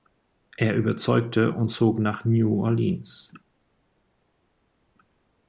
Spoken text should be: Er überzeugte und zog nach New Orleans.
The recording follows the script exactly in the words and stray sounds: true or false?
true